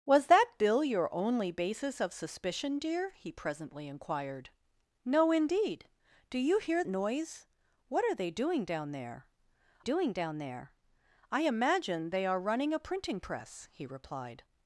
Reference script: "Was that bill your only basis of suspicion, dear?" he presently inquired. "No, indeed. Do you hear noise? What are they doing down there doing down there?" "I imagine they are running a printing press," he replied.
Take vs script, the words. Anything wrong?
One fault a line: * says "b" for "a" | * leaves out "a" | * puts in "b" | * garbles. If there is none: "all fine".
all fine